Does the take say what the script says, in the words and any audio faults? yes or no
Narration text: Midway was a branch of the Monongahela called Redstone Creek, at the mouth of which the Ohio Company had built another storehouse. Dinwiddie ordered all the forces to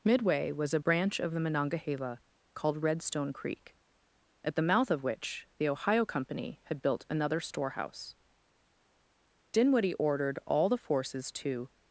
yes